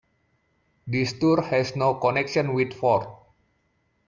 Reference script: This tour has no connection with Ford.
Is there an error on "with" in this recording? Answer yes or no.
no